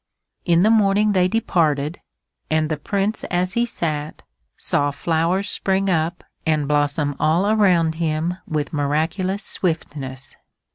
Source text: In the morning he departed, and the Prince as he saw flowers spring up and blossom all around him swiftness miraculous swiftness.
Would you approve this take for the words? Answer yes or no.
no